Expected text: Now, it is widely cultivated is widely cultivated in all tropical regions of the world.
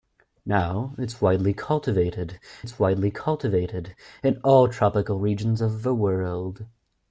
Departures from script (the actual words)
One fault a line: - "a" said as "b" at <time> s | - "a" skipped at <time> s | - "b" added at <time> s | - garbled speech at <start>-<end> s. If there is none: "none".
none